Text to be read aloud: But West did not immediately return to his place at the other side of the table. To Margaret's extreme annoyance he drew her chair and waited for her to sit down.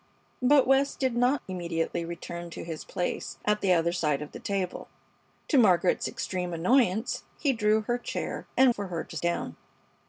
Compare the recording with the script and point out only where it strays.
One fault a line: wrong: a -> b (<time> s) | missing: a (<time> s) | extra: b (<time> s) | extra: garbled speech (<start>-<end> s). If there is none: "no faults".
missing: waited (8.7 s)
missing: sit (9.2 s)